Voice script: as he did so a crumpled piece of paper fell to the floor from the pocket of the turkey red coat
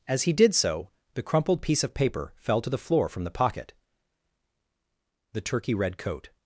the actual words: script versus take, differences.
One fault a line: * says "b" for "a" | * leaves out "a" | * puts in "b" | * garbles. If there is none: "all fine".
* says "the" for "a"
* leaves out "of"